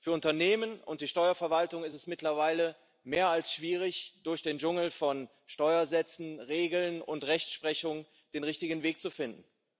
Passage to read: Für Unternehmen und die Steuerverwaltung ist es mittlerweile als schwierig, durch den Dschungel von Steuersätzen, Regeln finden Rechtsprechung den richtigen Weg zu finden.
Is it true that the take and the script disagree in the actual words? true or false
true